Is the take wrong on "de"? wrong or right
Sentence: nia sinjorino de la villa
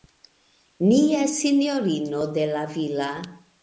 right